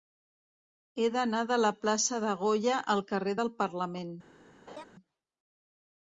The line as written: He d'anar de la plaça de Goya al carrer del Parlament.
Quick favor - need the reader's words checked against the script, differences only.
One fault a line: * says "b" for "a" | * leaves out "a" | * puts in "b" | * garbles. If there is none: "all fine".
all fine